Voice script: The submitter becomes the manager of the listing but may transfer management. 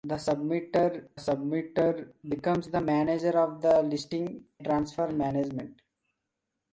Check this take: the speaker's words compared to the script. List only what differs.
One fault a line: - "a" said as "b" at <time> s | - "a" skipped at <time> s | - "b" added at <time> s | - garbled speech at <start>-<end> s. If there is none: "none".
- "submitter" added at 1.1 s
- "but may" skipped at 4.5 s